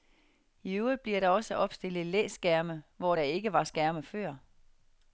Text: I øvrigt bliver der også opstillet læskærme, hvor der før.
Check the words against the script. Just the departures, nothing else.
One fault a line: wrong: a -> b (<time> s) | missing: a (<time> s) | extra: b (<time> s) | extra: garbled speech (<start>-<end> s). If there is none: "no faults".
extra: ikke var skærme (3.2 s)